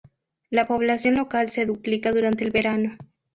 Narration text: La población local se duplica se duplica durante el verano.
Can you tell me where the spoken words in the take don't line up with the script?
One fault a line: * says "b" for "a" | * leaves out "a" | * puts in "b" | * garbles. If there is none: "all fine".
* leaves out "se duplica"